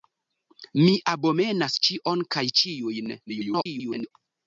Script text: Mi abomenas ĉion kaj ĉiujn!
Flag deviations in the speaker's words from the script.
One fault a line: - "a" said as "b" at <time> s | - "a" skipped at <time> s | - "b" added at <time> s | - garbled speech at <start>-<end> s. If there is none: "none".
- garbled speech at 3.3-4.1 s